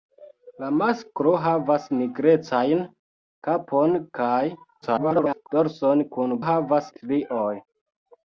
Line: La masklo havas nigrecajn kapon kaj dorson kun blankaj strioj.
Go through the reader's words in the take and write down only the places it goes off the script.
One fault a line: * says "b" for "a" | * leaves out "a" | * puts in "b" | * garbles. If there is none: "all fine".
* garbles
* says "havas" for "blankaj"